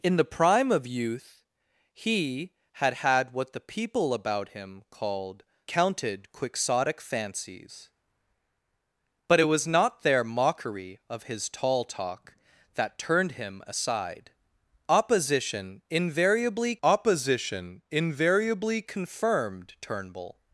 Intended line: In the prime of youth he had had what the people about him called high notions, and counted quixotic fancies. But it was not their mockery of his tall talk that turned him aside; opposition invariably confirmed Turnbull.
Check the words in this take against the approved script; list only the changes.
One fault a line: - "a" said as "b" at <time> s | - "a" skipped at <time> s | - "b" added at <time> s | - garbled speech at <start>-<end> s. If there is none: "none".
- "high notions and" skipped at 5.4 s
- "opposition invariably" added at 16.8 s